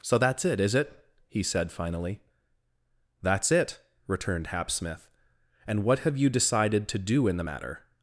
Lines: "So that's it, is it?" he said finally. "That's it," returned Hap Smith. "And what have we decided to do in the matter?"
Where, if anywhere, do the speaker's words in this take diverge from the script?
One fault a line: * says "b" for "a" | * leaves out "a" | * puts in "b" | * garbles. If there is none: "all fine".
* says "you" for "we"